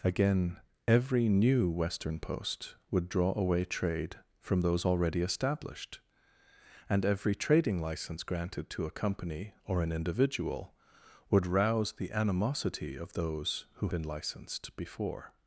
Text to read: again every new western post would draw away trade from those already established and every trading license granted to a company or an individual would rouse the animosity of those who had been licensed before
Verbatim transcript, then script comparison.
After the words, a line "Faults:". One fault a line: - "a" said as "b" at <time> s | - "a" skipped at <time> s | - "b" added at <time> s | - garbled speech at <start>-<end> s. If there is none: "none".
again every new western post would draw away trade from those already established and every trading license granted to a company or an individual would rouse the animosity of those who been licensed before
Faults:
- "had" skipped at 13.9 s